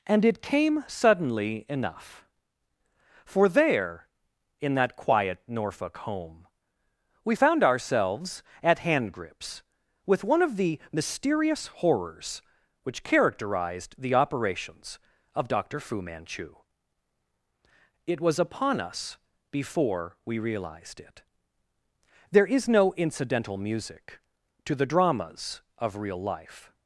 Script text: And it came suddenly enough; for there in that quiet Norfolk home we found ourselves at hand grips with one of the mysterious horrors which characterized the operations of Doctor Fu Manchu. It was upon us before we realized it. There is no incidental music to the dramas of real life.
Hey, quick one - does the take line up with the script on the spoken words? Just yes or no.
yes